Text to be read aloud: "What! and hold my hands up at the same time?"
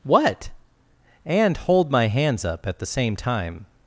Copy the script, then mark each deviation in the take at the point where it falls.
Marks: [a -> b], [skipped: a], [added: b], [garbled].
"What! and hold my hands up at the same time?"